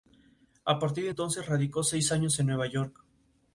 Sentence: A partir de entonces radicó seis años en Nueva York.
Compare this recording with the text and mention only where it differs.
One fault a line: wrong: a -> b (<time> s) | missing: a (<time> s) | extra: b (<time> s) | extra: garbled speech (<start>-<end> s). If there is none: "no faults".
no faults